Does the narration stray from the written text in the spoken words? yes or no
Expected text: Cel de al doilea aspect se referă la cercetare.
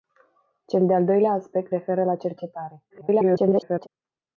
yes